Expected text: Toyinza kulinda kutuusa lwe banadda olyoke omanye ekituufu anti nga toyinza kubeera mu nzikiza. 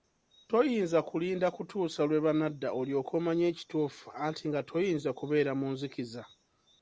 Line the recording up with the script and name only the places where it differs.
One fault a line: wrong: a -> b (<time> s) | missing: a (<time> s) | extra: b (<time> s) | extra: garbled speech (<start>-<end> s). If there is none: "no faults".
no faults